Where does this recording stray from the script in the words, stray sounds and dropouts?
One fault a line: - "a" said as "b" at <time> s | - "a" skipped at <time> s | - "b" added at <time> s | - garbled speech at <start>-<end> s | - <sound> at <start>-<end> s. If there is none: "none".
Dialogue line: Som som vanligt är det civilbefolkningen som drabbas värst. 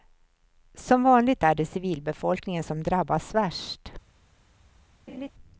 - "som" skipped at 1.0 s
- laugh at 5.1-5.3 s